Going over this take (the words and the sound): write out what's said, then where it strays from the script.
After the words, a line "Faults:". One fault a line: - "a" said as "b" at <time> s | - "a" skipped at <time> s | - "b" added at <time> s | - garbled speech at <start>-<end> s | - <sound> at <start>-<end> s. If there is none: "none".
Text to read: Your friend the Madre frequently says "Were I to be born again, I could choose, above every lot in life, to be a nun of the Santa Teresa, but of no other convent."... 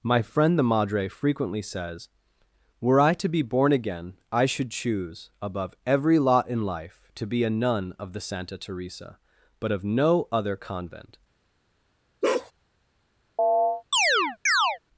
My friend the Madre frequently says "Were I to be born again, I should choose, above every lot in life, to be a nun of the Santa Teresa, but of no other convent."...
Faults:
- "Your" said as "My" at 0.0 s
- "could" said as "should" at 4.5 s
- bark at 12.2-12.5 s
- chirp at 13.4-14.8 s